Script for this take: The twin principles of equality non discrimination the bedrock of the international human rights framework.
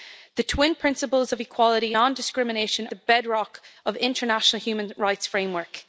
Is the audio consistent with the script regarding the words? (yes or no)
yes